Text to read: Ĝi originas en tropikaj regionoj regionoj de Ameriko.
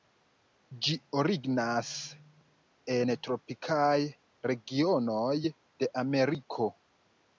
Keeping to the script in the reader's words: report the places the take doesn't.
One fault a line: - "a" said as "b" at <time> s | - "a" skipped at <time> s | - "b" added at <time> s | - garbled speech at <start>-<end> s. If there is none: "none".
- "regionoj" skipped at 5.4 s